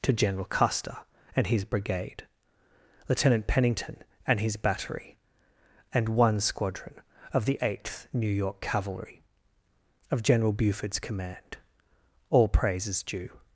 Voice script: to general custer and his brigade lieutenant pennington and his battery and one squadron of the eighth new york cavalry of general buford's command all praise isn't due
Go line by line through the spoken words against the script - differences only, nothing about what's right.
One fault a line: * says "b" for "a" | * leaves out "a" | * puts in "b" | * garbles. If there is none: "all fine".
* says "is" for "isn't"